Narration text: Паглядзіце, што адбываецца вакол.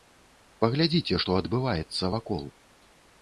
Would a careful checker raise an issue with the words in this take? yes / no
no